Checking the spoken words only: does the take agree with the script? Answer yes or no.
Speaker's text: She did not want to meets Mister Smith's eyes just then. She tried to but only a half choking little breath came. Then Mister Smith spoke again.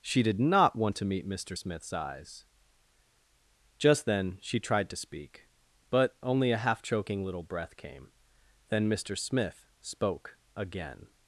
no